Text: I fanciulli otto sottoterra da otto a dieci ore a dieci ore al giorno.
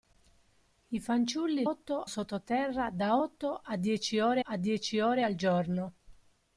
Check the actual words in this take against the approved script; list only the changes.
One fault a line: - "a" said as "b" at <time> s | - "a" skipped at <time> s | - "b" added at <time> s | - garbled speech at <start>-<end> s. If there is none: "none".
none